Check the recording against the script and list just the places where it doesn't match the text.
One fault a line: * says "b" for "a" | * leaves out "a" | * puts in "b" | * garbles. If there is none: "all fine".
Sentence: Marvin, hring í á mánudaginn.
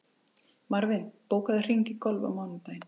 * puts in "bókaðu"
* puts in "golf"